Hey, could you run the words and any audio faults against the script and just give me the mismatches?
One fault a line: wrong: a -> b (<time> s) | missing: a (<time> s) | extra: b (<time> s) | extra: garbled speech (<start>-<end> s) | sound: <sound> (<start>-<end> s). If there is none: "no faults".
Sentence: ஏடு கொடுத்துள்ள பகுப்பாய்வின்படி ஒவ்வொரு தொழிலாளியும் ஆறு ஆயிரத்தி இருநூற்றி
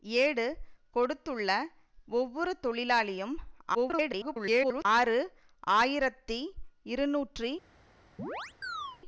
missing: பகுப்பாய்வின்படி (1.5 s)
extra: garbled speech (3.7-4.9 s)
sound: chirp (8.2-9.0 s)